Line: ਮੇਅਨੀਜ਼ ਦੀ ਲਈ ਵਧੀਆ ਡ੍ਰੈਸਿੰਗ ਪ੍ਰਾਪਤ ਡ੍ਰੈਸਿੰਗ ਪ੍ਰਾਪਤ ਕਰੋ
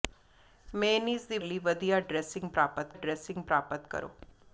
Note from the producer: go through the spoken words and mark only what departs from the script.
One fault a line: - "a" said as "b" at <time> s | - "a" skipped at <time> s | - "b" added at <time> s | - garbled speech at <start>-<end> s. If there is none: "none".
none